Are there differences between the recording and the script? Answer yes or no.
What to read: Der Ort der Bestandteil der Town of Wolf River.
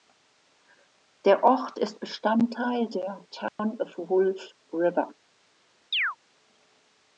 yes